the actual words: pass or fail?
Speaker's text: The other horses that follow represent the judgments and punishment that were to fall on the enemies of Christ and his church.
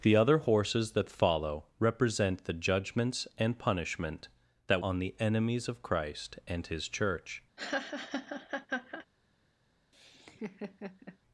fail